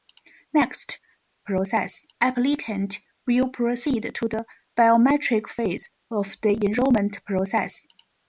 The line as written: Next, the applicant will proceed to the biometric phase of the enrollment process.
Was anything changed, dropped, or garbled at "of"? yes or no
no